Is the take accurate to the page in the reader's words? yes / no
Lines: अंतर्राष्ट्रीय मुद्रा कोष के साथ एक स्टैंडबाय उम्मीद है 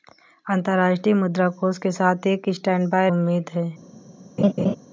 yes